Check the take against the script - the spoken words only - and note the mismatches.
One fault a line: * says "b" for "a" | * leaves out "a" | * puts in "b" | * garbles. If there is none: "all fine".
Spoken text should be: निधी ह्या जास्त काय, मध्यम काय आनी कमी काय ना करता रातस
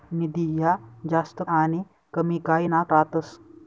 * leaves out "काय मध्यम काय"
* leaves out "करता"